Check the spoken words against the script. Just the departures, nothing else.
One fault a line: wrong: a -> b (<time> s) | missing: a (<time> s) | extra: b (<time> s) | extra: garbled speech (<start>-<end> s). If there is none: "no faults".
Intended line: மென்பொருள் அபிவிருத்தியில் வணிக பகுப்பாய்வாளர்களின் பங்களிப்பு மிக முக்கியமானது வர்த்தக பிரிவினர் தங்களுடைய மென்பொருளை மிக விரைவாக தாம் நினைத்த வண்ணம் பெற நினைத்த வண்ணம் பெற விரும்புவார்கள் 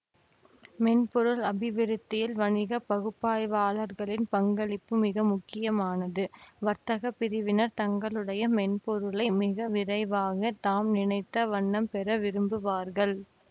missing: நினைத்த வண்ணம் பெற (12.2 s)